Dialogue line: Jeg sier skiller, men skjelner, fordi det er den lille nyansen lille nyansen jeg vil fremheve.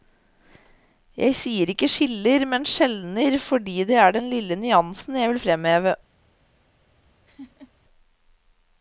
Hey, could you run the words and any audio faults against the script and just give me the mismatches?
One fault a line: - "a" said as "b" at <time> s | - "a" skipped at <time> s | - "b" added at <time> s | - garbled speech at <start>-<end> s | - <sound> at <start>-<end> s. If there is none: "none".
- "ikke" added at 1.7 s
- "lille nyansen" skipped at 5.2 s
- laugh at 7.3-7.7 s